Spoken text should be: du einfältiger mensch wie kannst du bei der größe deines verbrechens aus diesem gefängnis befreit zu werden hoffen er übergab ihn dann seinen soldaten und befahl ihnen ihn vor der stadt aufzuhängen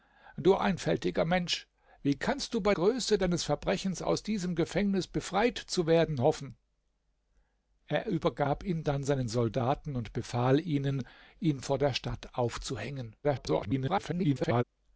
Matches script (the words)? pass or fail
fail